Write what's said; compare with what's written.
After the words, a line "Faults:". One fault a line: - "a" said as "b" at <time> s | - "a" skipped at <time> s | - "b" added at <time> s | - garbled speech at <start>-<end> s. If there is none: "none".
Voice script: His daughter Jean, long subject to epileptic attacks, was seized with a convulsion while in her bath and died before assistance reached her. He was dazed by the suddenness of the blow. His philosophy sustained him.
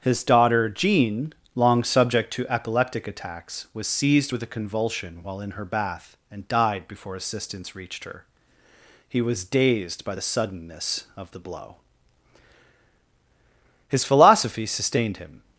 His daughter Jean, long subject to epileptic attacks, was seized with a convulsion while in her bath and died before assistance reached her. He was dazed by the suddenness of the blow. His philosophy sustained him.
Faults:
none